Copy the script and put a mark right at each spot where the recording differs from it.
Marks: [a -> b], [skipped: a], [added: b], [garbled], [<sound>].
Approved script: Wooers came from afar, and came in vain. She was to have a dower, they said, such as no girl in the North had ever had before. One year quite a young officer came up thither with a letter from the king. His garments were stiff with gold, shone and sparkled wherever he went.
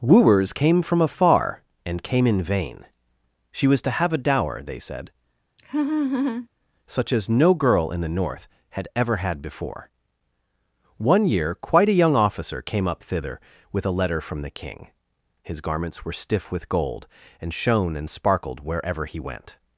Wooers came from afar, and came in vain. She was to have a dower, they said, [laugh] such as no girl in the North had ever had before. One year quite a young officer came up thither with a letter from the king. His garments were stiff with gold, [added: and] shone and sparkled wherever he went.